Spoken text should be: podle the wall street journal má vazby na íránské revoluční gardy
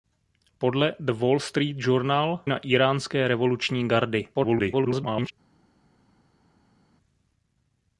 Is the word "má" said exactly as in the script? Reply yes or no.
no